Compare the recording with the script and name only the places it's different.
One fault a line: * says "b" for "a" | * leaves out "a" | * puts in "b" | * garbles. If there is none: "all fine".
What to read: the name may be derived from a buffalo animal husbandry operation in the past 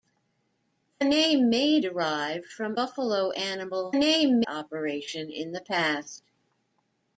* leaves out "be"
* leaves out "a"
* says "name" for "husbandry"